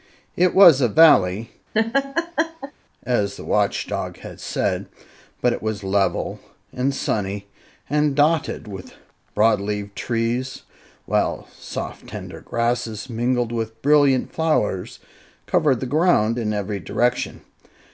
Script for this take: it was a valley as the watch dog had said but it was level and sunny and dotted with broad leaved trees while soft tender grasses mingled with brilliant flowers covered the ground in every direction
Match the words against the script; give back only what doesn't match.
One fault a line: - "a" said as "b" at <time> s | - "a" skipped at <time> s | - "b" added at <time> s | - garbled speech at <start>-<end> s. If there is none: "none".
none